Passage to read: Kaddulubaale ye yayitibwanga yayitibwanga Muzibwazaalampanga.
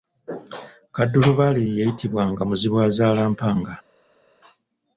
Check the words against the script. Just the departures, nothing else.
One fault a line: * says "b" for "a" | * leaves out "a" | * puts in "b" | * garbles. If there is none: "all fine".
* leaves out "yayitibwanga"